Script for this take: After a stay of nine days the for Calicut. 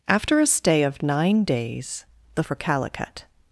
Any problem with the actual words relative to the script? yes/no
no